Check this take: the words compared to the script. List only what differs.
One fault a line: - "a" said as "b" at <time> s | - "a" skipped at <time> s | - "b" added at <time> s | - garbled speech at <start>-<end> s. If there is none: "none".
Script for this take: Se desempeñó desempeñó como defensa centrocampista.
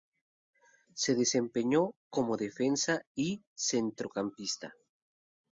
- "desempeñó" skipped at 1.9 s
- "y" added at 3.2 s